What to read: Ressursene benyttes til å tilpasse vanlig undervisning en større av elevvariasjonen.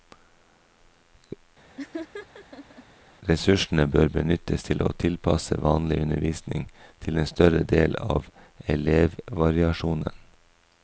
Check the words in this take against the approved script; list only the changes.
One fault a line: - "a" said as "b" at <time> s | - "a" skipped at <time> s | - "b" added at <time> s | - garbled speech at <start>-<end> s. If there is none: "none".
- "bør" added at 3.9 s
- "til" added at 7.1 s
- "del" added at 7.7 s